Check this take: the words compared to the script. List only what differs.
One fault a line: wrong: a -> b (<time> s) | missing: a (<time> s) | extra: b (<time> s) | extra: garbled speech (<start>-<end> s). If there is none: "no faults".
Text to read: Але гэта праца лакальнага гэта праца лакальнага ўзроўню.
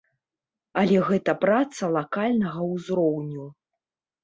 missing: гэта праца лакальнага (2.6 s)